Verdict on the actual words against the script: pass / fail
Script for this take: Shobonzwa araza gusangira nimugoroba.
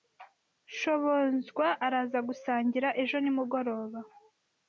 fail